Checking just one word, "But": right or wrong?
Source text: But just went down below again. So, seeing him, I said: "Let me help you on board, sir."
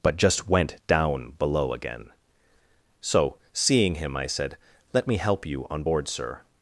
right